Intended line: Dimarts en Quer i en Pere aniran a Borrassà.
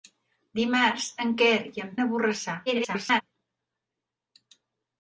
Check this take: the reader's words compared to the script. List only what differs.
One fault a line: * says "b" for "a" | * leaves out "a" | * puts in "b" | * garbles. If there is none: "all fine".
* leaves out "Pere aniran"
* garbles